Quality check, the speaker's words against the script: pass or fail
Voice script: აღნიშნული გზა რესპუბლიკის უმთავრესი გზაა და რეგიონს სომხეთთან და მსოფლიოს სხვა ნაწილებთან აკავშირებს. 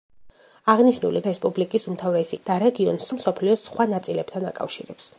fail